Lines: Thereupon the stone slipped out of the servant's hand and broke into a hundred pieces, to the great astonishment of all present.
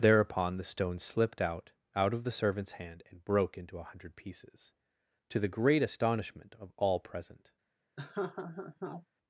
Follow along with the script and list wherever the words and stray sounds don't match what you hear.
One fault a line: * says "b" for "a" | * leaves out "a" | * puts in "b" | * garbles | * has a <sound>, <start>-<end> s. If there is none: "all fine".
* puts in "out"
* has a laugh, 8.0-9.1 s